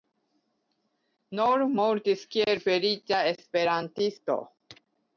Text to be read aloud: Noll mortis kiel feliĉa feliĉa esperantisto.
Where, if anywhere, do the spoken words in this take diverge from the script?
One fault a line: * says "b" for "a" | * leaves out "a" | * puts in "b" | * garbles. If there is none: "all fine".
* leaves out "feliĉa"